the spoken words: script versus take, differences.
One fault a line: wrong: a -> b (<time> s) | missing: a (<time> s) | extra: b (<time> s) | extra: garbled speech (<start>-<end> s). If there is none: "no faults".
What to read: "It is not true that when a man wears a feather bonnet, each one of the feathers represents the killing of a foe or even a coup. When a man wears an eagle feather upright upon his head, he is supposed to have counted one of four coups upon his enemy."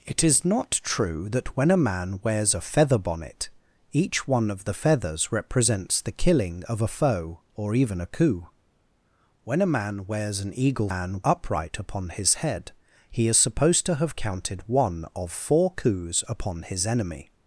wrong: feather -> man (10.9 s)